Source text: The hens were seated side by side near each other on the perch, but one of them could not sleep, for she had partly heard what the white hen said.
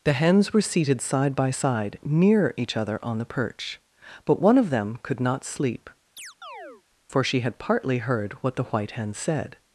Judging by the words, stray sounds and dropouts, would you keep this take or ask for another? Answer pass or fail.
fail